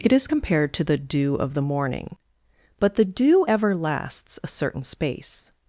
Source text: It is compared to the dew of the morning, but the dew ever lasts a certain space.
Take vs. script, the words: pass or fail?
pass